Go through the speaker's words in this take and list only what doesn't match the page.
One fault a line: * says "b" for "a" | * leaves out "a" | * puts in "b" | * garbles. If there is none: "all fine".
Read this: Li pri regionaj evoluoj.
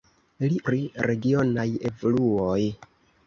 all fine